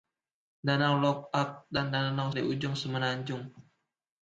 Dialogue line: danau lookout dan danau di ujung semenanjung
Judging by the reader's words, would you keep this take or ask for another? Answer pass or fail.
pass